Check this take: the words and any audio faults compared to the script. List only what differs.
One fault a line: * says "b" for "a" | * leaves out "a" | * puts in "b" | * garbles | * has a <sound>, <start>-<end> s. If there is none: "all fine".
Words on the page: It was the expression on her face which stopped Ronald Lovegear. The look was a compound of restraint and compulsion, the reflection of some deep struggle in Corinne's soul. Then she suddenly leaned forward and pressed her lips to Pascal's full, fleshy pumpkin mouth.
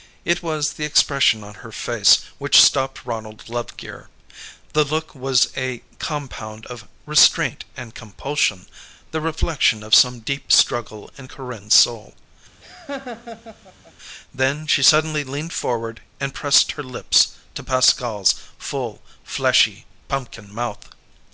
* has a laugh, 12.6-13.9 s